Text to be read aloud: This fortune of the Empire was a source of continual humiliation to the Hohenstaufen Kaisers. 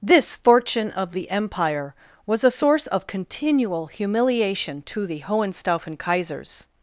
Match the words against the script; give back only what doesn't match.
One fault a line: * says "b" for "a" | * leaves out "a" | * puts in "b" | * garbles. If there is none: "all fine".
all fine